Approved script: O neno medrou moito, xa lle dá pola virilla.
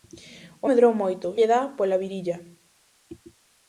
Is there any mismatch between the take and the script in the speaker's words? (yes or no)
yes